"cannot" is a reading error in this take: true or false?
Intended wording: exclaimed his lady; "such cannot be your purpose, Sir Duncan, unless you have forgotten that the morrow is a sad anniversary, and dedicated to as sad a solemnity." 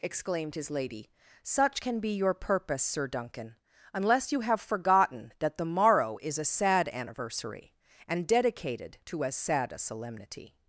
true